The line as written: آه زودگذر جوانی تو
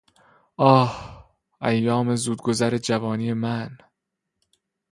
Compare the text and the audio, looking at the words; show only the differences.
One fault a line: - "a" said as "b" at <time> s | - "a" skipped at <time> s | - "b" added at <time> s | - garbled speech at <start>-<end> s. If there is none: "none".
- "ایام" added at 1.6 s
- "تو" said as "من" at 3.3 s